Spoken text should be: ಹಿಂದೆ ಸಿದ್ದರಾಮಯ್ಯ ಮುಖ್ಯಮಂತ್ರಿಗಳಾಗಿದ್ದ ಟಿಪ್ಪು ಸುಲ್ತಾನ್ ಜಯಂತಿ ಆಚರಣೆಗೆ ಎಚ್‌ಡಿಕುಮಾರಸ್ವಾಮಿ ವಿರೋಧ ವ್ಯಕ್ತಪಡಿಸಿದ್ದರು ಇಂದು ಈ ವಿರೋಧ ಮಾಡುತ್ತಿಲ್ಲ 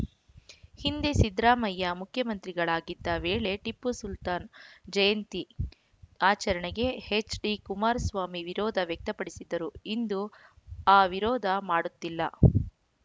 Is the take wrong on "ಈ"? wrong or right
wrong